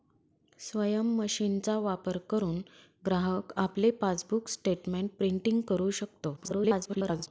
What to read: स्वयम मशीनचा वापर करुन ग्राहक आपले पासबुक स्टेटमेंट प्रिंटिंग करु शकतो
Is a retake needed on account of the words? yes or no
yes